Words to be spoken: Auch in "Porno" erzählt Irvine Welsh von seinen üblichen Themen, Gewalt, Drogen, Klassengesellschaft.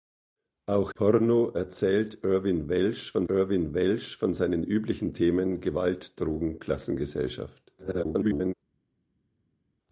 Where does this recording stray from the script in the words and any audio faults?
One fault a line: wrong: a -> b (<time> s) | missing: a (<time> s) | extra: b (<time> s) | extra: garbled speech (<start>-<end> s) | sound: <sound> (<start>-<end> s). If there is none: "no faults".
missing: in (0.9 s)
extra: Irvine Welsh von (3.3 s)
extra: garbled speech (7.8-8.5 s)